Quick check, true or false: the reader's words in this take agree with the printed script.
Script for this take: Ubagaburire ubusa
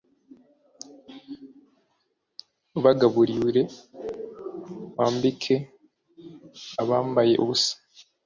false